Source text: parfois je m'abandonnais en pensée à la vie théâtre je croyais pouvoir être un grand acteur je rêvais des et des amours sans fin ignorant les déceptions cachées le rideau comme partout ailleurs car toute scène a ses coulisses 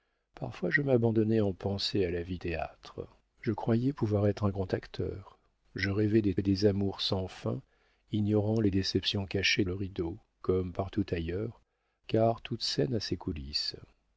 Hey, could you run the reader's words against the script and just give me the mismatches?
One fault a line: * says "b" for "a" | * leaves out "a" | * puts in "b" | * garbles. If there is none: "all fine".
all fine